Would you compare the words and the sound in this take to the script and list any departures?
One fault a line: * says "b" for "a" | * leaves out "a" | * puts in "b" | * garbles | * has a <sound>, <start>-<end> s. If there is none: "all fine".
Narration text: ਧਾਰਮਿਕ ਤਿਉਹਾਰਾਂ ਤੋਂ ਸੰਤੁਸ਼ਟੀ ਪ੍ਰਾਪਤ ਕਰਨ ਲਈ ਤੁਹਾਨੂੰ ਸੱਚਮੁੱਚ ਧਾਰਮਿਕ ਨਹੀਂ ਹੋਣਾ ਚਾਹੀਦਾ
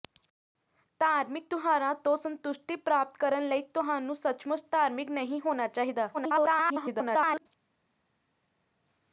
* garbles